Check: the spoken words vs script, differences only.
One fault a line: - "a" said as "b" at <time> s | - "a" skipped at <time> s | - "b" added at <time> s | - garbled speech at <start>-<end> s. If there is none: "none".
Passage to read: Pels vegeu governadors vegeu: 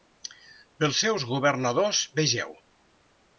- "vegeu" said as "seus" at 1.0 s